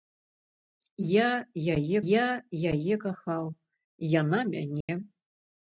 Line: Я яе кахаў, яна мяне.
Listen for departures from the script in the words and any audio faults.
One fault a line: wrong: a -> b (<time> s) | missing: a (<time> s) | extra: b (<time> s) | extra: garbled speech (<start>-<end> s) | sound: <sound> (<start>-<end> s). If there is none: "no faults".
extra: я яе (2.1 s)
sound: dropout (4.8-4.9 s)